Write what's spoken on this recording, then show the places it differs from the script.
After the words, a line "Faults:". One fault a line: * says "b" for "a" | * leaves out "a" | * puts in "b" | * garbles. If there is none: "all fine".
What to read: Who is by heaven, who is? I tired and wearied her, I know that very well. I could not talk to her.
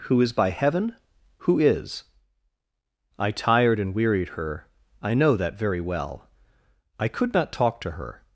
Who is by heaven, who is? I tired and wearied her, I know that very well. I could not talk to her.
Faults:
all fine